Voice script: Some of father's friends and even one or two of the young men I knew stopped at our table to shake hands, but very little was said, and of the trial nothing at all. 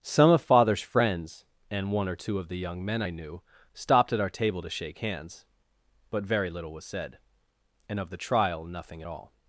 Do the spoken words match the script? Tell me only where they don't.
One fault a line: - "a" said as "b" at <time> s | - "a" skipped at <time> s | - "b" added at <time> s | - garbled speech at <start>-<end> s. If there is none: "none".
- "even" skipped at 1.9 s